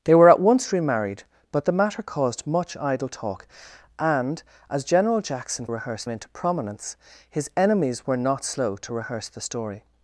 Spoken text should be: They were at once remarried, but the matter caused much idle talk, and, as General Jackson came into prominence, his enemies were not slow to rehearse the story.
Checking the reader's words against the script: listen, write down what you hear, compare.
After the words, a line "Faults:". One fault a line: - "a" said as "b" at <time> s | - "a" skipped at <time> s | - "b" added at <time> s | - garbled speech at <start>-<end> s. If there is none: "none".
They were at once remarried, but the matter caused much idle talk, and, as General Jackson rehearse into prominence, his enemies were not slow to rehearse the story.
Faults:
- "came" said as "rehearse" at 5.7 s